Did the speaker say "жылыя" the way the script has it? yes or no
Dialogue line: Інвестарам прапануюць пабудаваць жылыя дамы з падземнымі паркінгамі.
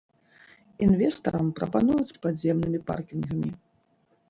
no